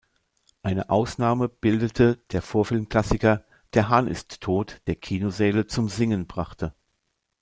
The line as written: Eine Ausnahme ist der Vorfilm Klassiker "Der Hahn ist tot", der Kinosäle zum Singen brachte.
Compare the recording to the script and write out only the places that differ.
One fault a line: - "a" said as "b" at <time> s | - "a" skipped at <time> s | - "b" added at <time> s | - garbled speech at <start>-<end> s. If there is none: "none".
- "ist" said as "bildete" at 1.5 s